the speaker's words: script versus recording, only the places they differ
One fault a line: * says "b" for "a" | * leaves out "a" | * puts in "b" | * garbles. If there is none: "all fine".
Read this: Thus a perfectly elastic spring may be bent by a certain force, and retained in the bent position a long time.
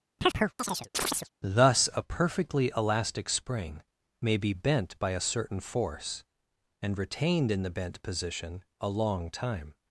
all fine